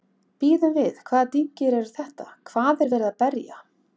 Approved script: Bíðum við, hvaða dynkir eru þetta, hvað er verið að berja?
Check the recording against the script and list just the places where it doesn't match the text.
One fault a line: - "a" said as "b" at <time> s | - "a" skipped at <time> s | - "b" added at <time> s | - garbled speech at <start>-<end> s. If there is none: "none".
none